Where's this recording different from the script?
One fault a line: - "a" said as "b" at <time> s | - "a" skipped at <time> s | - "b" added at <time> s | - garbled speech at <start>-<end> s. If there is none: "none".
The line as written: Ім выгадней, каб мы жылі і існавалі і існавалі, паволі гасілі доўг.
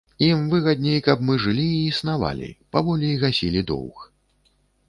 - "і існавалі" skipped at 2.5 s